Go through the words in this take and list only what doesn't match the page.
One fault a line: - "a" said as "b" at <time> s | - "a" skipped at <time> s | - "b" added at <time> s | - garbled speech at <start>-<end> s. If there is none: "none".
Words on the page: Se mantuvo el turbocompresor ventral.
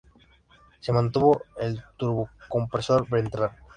none